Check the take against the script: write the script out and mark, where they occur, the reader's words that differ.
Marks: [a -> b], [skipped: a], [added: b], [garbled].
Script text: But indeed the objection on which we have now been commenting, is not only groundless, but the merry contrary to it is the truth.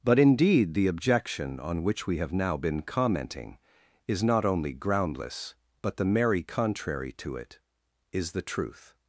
But indeed the objection on which we have now been commenting, is not only groundless, but the merry contrary to it is the truth.